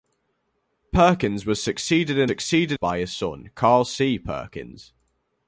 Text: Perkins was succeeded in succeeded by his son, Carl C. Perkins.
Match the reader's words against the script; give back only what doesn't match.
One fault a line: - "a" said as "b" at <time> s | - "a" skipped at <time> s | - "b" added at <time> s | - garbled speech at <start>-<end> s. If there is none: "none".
none